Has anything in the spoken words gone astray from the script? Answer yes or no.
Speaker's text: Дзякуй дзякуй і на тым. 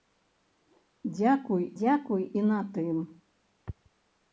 no